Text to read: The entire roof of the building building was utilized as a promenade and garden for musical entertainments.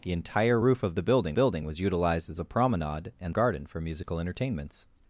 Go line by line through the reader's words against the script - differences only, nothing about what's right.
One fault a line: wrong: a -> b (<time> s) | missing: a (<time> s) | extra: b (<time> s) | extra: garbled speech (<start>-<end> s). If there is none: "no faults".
no faults